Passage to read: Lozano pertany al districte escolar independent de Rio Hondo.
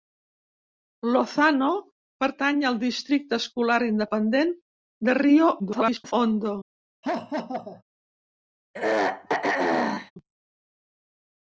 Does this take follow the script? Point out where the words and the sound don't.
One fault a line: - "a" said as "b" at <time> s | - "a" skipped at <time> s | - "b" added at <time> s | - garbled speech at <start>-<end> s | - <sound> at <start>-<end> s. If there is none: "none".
- garbled speech at 5.6-6.1 s
- laugh at 7.0-7.8 s
- throat clearing at 8.7-10.1 s